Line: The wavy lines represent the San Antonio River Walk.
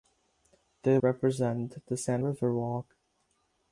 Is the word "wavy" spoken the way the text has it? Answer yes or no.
no